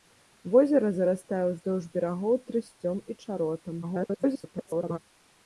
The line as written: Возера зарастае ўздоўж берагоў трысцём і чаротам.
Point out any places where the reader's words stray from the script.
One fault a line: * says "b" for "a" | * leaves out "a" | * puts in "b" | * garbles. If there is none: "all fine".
* garbles